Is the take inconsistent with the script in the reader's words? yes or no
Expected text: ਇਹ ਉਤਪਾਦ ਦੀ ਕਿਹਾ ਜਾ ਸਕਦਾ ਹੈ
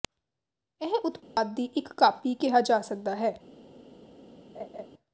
yes